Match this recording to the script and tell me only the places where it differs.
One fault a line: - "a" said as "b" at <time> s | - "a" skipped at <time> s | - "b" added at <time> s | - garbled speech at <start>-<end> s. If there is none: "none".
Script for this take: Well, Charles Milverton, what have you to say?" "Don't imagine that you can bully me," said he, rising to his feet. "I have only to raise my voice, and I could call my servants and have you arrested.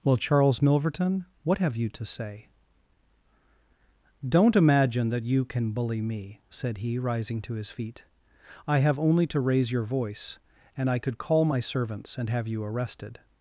- "my" said as "your" at 9.7 s